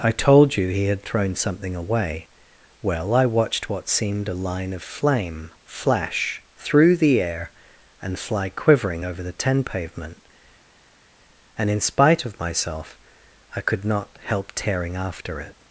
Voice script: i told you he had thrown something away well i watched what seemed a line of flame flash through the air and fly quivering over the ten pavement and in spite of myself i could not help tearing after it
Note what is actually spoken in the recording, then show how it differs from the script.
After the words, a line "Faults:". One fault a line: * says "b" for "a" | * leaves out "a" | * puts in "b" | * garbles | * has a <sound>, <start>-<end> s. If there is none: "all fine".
i told you he had thrown something away well i watched what seemed a line of flame flash through the air and fly quivering over the ten pavement and in spite of myself i could not help tearing after it
Faults:
all fine